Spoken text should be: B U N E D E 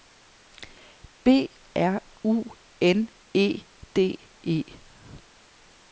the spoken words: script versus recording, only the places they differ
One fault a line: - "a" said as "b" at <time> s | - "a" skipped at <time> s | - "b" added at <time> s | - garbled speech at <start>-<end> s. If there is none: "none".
- "R" added at 1.8 s